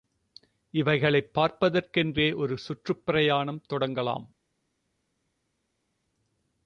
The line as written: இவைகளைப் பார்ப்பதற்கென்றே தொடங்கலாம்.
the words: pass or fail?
fail